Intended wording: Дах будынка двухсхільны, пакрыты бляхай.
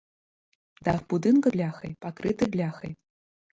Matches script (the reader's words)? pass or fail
fail